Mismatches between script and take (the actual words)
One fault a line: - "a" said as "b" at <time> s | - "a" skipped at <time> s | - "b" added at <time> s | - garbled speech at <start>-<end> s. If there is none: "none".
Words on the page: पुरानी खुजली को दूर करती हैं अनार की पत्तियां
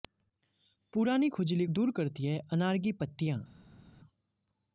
- "को" skipped at 1.6 s